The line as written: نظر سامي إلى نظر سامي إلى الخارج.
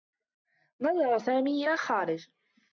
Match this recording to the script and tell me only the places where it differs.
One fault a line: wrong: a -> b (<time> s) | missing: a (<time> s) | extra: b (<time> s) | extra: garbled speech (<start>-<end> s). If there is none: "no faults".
missing: نظر سامي إلى (1.7 s)